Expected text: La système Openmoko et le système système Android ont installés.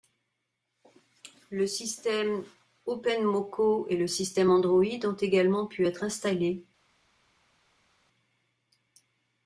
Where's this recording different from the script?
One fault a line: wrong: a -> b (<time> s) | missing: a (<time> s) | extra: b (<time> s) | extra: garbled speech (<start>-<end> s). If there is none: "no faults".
wrong: La -> Le (1.5 s)
missing: système (4.5 s)
extra: également pu être (5.2 s)